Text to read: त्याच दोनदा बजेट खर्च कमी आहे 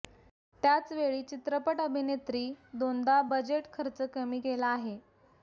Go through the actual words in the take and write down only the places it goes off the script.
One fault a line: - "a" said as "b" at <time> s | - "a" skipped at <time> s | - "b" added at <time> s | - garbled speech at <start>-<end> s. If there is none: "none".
- "वेळी चित्रपट अभिनेत्री" added at 0.9 s
- "केला" added at 4.4 s